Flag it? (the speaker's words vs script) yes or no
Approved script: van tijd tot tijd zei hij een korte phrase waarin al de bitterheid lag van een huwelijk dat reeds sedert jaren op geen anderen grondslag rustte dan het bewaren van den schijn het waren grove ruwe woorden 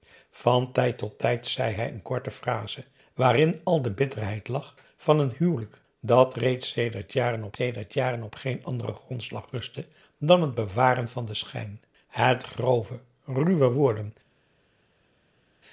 yes